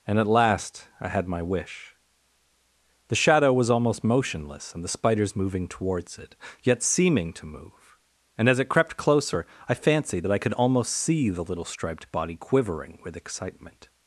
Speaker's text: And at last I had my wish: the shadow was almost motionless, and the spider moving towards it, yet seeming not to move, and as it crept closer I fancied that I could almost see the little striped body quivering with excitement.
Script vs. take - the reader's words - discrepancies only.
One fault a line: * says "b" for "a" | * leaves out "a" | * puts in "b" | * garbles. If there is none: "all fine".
* says "spiders" for "spider"
* leaves out "not"